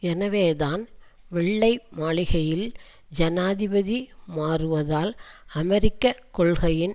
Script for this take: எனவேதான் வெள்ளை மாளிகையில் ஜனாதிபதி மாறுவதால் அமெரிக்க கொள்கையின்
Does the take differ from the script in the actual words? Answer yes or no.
no